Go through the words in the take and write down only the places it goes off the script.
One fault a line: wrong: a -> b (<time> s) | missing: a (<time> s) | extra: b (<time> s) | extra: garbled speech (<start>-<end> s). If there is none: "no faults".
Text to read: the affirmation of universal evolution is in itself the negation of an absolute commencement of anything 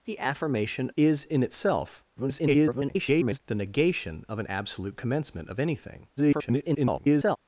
missing: of universal evolution (0.9 s)
extra: garbled speech (2.2-3.4 s)
extra: garbled speech (6.2-7.4 s)